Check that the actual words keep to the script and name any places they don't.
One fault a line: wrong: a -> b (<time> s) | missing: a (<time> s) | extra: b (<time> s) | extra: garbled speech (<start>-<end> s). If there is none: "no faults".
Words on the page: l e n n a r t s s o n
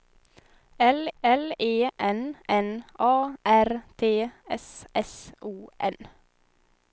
extra: l (1.2 s)